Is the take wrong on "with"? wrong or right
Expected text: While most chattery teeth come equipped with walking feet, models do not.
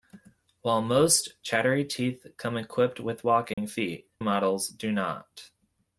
right